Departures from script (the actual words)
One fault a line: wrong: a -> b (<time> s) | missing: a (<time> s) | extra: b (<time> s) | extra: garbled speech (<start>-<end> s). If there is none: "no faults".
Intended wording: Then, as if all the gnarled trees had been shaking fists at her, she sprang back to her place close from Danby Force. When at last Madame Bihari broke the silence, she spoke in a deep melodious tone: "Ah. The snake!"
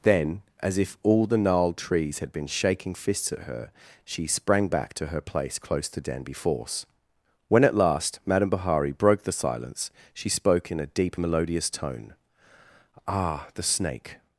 wrong: from -> to (5.9 s)